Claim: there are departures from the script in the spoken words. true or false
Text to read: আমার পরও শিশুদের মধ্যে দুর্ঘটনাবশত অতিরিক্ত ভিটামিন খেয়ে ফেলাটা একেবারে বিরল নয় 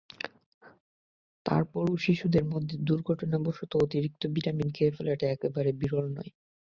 true